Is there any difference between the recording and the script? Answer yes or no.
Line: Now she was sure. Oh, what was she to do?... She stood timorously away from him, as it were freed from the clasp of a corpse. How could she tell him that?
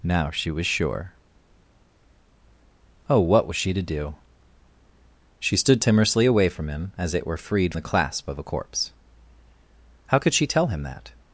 yes